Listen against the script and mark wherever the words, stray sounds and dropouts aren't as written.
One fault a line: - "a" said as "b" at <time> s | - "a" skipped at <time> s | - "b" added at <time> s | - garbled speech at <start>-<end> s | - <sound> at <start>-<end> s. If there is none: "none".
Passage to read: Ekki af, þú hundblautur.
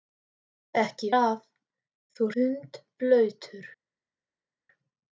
none